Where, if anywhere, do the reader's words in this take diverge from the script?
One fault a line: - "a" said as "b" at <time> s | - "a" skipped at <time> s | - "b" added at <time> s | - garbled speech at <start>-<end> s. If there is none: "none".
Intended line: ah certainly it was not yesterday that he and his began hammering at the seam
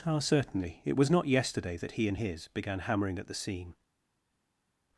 none